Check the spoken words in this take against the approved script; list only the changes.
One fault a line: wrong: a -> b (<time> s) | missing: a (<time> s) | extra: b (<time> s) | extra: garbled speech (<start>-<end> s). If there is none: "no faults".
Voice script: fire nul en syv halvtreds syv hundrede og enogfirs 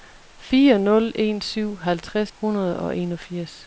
missing: syv (2.3 s)